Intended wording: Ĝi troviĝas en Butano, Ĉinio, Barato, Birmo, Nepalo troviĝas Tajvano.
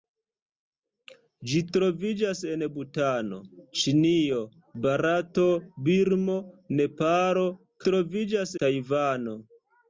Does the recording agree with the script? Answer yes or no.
yes